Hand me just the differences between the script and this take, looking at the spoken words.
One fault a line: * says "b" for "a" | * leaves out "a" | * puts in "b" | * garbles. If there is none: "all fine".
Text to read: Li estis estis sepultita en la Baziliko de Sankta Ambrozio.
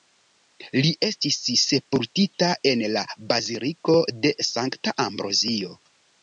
* leaves out "estis"